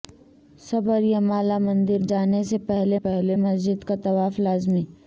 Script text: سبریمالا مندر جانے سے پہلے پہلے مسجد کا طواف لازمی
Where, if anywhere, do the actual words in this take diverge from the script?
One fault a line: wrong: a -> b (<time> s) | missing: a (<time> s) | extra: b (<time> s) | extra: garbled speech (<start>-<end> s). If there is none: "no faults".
no faults